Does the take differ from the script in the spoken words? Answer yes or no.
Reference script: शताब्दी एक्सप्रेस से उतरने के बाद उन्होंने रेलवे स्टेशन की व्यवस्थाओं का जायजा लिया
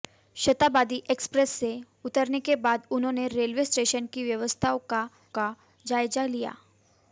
yes